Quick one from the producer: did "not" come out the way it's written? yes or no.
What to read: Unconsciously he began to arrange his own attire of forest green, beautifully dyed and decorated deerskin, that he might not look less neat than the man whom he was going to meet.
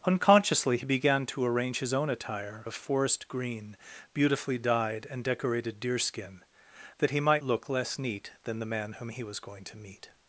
no